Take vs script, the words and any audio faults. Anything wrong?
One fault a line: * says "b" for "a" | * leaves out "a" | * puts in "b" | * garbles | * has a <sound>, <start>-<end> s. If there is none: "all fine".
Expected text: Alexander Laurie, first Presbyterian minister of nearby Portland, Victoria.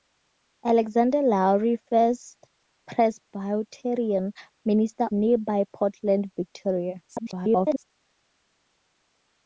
* leaves out "of"
* garbles